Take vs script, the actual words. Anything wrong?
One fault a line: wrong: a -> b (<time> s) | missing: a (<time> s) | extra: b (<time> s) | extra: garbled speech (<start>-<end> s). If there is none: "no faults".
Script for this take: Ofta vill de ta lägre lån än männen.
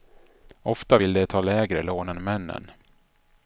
no faults